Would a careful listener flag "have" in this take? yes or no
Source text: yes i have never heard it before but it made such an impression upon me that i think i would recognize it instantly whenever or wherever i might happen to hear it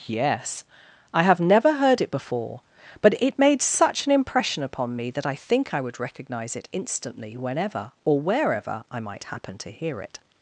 no